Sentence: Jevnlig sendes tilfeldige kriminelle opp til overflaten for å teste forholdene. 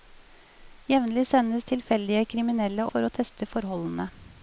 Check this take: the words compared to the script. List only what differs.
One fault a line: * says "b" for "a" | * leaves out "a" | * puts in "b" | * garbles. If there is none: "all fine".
* leaves out "opp til overflaten"